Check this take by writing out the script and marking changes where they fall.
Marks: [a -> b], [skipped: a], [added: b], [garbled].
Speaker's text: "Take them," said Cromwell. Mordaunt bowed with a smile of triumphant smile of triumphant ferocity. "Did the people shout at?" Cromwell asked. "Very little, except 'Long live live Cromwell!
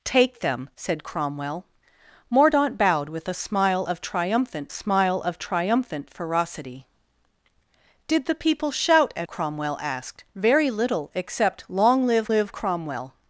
"Take them," said Cromwell. Mordaunt bowed with a smile of triumphant smile of triumphant ferocity. "Did the people shout at?" Cromwell asked. "Very little, except 'Long live live Cromwell!